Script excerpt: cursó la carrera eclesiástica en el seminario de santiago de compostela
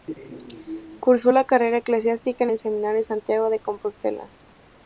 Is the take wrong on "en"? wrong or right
right